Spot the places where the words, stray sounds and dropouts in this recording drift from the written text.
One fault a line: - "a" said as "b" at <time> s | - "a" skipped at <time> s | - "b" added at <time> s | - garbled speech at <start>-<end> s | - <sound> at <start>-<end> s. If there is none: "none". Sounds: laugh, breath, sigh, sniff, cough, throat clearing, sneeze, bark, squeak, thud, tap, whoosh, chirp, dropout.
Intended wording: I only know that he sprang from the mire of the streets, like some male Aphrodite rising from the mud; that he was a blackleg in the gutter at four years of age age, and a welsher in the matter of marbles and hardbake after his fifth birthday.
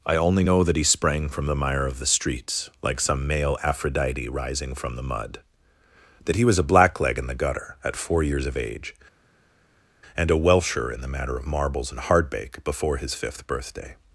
- "age" skipped at 8.9 s
- "after" said as "before" at 12.6 s